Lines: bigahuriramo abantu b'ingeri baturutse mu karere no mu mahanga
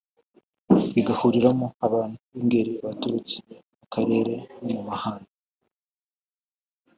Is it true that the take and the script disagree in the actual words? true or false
false